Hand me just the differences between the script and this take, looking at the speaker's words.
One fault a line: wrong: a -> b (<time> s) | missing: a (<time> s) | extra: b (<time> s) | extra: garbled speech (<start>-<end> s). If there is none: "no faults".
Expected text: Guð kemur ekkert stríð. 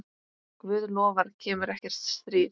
extra: lofar (1.0 s)